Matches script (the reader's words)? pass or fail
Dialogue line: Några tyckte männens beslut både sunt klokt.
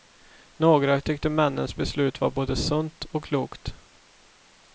fail